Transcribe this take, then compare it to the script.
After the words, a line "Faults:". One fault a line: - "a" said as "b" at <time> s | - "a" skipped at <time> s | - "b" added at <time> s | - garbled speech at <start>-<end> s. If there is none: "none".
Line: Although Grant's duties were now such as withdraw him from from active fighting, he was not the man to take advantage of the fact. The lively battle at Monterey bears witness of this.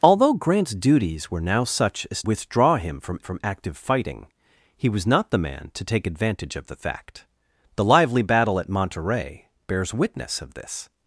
Although Grant's duties were now such as withdraw him from from active fighting, he was not the man to take advantage of the fact. The lively battle at Monterey bears witness of this.
Faults:
none